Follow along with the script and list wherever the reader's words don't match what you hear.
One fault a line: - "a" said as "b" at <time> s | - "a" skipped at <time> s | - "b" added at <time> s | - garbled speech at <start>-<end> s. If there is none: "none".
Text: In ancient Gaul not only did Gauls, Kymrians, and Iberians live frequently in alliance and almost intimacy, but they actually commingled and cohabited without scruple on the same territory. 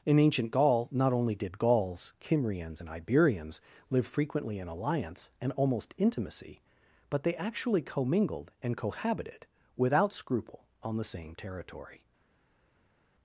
none